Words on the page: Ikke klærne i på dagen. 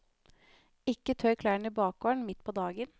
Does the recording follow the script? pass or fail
fail